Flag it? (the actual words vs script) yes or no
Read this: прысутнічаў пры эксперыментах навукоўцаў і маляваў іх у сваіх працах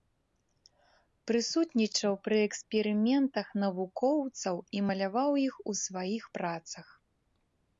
no